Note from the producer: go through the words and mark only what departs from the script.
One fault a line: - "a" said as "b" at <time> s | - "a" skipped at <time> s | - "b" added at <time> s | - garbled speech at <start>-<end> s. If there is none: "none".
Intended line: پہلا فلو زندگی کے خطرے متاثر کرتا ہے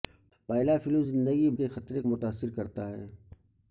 none